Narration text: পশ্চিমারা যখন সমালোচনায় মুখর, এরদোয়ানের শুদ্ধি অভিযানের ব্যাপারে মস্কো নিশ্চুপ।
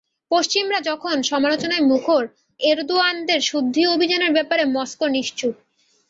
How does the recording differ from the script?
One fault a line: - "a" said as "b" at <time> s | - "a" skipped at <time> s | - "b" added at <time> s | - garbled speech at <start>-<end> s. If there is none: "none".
none